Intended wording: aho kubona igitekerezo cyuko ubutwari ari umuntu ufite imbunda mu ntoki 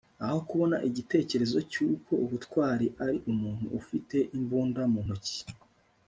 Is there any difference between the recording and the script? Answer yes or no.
no